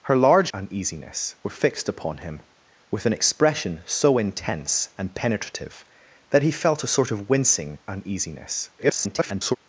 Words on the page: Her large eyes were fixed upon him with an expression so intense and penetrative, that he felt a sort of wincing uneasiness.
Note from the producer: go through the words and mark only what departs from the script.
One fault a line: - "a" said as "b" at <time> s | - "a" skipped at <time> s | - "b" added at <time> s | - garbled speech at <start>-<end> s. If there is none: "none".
- "eyes" said as "uneasiness" at 0.5 s
- garbled speech at 8.8-9.6 s